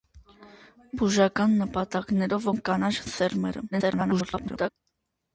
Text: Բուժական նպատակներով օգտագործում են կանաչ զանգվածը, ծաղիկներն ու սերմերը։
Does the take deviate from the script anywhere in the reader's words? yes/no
yes